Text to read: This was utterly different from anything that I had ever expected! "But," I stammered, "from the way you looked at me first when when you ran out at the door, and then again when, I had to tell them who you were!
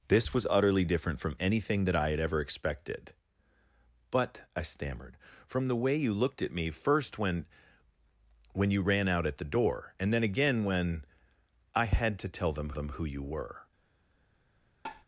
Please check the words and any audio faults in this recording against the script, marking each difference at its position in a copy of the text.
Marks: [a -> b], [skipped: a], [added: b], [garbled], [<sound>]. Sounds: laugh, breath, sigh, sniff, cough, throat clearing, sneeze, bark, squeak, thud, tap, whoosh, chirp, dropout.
This was utterly different from anything that I had ever expected! "But," I stammered, "from the way you looked at me first when when you ran out at the door, and then again when, I had to tell them [added: them] who you were! [tap]